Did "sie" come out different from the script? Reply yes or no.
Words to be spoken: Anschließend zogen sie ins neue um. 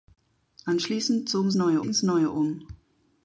yes